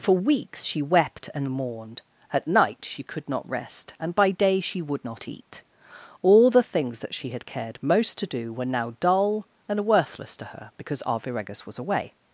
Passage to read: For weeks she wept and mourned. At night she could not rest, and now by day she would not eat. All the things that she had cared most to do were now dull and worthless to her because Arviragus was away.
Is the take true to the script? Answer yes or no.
no